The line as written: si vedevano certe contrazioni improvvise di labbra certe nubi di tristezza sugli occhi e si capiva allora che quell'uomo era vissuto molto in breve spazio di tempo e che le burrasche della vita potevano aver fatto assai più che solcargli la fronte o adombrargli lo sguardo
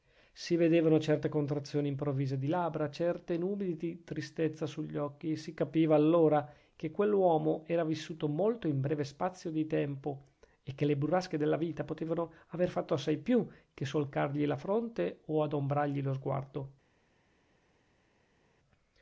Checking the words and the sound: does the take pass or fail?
pass